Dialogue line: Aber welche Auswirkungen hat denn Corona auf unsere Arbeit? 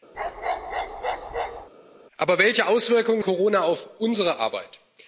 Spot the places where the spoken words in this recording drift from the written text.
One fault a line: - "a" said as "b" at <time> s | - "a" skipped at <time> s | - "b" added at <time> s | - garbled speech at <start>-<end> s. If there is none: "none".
- "hat denn" skipped at 3.2 s